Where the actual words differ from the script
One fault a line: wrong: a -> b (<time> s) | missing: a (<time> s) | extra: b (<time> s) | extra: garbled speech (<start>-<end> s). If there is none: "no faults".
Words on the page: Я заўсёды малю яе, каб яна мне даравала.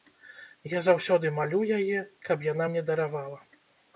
no faults